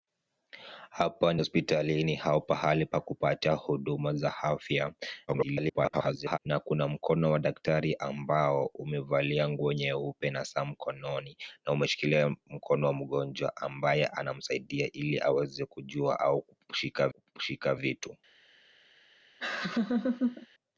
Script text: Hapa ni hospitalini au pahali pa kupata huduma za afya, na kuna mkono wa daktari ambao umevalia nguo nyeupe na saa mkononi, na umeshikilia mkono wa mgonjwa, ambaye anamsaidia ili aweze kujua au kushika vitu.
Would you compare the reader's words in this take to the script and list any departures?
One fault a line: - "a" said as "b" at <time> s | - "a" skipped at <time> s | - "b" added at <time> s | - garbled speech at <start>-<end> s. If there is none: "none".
- garbled speech at 5.3-6.4 s
- "kushika" added at 17.1 s